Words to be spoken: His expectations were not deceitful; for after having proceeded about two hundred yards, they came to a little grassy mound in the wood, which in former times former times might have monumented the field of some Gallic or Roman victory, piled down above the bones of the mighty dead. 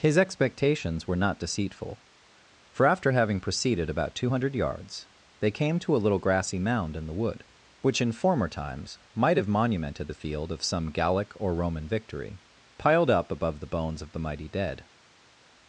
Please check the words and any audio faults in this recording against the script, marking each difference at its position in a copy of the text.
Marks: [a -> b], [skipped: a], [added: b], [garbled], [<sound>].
His expectations were not deceitful; for after having proceeded about two hundred yards, they came to a little grassy mound in the wood, which in former times [skipped: former times] might have monumented the field of some Gallic or Roman victory, piled [down -> up] above the bones of the mighty dead.